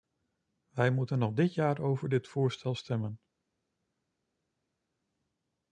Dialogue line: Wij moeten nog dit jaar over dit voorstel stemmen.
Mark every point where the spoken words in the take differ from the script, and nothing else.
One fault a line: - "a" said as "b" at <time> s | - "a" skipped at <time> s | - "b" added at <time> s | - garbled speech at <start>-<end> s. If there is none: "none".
none